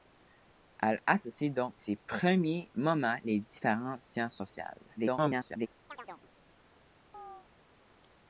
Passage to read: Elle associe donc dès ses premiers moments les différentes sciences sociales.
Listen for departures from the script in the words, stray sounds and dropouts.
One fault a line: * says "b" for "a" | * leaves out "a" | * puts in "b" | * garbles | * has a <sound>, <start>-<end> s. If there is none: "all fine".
* leaves out "dès"
* garbles
* has a chirp, 5.9-6.3 s
* has a chirp, 7.1-7.5 s